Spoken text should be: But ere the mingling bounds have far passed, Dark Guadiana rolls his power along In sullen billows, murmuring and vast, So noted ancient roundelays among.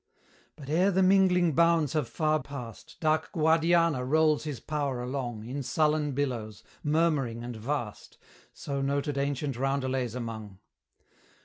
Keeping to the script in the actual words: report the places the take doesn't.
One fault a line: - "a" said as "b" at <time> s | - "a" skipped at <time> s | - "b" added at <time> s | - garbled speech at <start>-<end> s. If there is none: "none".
none